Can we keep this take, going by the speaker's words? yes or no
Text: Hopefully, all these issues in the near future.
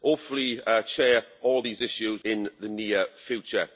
yes